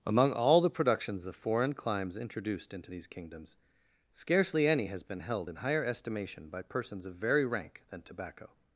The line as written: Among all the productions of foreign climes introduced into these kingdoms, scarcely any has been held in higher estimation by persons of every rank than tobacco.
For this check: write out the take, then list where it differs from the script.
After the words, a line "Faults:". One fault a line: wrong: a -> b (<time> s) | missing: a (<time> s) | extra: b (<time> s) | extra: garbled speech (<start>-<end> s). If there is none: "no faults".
Among all the productions of foreign climes introduced into these kingdoms, scarcely any has been held in higher estimation by persons of very rank than tobacco.
Faults:
wrong: every -> very (7.1 s)